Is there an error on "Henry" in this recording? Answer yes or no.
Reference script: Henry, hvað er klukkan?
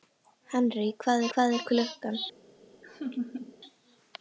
no